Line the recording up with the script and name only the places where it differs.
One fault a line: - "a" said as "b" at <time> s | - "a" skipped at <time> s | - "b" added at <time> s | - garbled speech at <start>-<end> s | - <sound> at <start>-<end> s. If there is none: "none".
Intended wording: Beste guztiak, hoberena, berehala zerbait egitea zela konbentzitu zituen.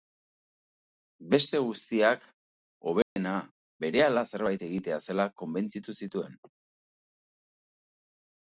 - dropout at 3.0-3.2 s